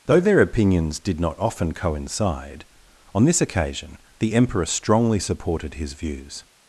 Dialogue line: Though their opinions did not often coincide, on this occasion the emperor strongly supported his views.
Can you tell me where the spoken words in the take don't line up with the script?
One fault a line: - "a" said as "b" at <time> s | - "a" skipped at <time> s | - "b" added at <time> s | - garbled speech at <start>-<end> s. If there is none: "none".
none